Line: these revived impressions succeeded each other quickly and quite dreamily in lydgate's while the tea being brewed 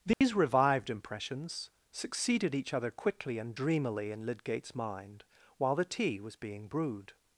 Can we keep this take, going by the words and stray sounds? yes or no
no